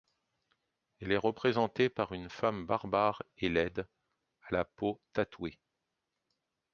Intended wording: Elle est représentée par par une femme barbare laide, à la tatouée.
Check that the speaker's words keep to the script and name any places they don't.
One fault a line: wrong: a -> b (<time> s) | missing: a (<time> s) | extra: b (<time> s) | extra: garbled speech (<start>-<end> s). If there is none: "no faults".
missing: par (2.1 s)
extra: et (3.4 s)
extra: peau (4.6 s)